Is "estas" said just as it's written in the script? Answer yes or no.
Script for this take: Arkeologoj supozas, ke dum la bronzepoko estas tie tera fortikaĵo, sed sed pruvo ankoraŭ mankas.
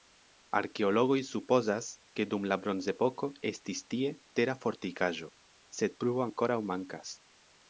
no